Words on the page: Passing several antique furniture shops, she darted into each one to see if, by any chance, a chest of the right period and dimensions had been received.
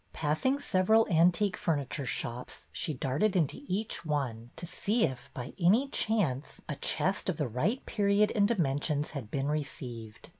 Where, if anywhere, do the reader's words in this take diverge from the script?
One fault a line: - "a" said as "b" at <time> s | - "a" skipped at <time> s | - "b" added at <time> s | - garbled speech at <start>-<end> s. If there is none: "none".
none